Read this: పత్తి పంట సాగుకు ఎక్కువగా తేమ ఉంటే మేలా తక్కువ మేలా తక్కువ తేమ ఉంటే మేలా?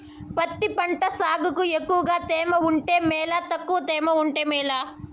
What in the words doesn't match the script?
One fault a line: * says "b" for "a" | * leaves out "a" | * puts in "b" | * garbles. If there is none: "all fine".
* leaves out "మేలా తక్కువ"